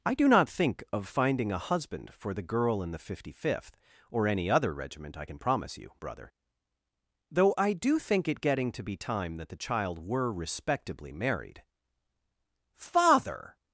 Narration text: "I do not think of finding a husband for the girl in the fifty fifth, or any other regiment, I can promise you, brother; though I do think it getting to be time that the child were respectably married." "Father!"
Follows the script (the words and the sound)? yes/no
yes